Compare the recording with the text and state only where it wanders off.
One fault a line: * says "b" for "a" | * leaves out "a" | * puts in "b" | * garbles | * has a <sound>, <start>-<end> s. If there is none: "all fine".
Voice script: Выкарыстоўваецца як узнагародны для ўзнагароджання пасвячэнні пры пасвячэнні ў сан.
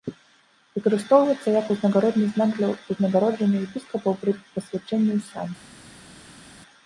* puts in "знак"
* says "епіскапаў" for "пасвячэнні"